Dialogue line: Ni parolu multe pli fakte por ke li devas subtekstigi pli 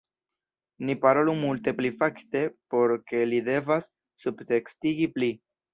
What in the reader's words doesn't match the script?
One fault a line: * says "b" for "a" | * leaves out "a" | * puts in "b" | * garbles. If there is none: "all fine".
all fine